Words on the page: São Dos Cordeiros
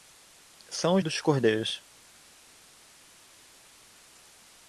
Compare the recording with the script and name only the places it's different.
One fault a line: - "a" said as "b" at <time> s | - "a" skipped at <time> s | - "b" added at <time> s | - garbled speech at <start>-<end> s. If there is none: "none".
none